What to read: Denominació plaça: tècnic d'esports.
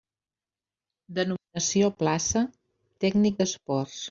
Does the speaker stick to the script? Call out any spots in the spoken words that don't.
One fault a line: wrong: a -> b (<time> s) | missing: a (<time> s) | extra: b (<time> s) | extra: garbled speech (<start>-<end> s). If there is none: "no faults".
no faults